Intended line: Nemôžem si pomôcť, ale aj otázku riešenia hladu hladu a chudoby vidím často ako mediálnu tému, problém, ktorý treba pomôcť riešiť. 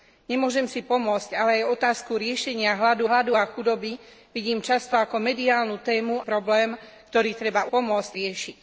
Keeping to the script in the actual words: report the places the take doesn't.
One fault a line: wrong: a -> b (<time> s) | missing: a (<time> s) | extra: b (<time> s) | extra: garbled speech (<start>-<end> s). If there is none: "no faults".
no faults